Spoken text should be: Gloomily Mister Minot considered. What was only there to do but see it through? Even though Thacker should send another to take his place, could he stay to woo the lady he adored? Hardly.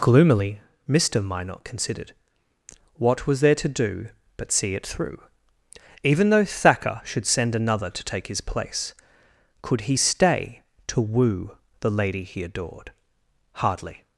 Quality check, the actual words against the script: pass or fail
fail